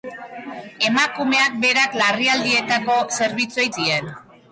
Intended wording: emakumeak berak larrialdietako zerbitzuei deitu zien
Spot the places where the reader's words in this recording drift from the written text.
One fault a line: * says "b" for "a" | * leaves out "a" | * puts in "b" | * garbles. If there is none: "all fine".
* leaves out "deitu"